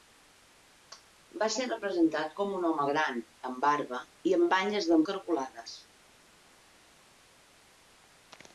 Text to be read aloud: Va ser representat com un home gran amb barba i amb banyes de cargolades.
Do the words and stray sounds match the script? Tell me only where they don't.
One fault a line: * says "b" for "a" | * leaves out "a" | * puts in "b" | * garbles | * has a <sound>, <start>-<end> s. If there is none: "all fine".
all fine